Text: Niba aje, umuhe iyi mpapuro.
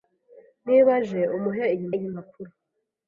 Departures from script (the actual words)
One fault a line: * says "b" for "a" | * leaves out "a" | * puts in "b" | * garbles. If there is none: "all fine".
* puts in "iyi"